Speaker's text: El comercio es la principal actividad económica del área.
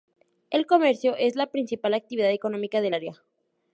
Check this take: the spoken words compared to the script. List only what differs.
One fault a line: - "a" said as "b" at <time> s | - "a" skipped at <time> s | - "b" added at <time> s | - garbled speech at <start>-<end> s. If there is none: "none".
none